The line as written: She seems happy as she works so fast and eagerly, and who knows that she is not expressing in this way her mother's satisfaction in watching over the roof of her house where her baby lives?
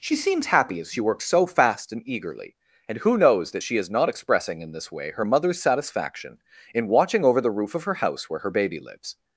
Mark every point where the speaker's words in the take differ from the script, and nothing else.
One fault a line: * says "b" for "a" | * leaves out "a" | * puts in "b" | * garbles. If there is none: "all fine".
all fine